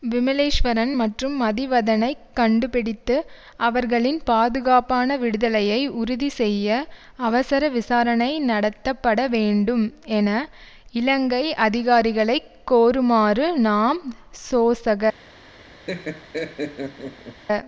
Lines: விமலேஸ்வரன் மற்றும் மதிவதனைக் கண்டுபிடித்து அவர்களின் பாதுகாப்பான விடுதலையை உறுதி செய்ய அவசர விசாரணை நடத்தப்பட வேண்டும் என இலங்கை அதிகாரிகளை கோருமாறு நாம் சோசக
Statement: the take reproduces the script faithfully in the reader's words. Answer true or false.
true